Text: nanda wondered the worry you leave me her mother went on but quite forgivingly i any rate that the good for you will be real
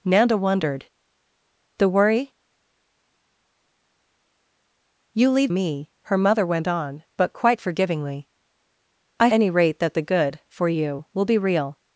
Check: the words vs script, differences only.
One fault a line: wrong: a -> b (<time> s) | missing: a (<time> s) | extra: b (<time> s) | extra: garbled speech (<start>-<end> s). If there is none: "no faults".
no faults